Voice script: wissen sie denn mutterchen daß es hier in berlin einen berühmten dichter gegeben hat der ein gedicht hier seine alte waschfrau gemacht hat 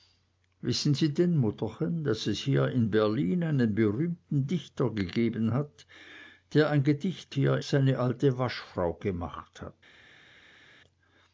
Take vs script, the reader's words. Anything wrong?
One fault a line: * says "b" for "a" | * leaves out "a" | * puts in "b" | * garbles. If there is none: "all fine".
all fine